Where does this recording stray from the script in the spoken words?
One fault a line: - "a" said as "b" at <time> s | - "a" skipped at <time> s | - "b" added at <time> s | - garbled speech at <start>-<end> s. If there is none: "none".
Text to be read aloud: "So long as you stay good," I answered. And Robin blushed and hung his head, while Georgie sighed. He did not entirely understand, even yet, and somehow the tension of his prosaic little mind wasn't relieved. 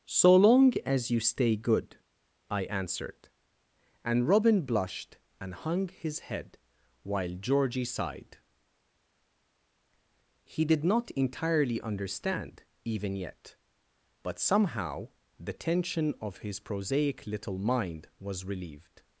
- "and" said as "but" at 14.2 s
- "wasn't" said as "was" at 18.2 s